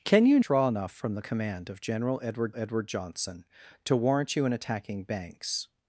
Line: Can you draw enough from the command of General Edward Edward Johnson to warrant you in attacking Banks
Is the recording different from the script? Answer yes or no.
no